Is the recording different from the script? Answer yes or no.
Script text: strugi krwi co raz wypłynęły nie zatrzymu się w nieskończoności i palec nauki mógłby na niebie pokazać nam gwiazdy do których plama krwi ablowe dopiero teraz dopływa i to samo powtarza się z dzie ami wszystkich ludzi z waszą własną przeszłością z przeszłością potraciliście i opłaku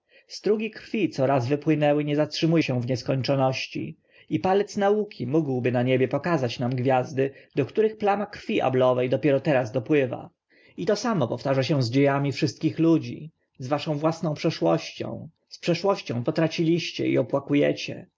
no